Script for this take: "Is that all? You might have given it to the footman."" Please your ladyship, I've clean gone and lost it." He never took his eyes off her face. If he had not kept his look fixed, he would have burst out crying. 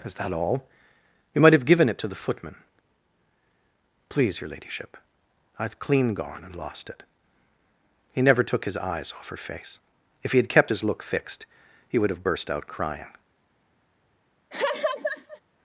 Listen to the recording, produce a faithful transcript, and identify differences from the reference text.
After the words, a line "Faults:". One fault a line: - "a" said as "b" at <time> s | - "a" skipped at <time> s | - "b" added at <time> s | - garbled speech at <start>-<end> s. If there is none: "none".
"Is that all? You might have given it to the footman."" Please your ladyship, I've clean gone and lost it." He never took his eyes off her face. If he had kept his look fixed, he would have burst out crying.
Faults:
- "not" skipped at 10.5 s